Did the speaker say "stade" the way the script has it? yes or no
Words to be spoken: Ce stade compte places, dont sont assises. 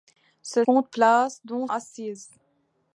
no